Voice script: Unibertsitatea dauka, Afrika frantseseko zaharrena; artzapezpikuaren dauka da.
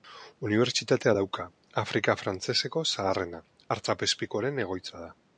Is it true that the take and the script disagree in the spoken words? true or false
true